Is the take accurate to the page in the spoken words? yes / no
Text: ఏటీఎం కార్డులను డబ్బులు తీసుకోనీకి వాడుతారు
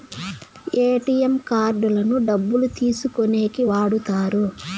yes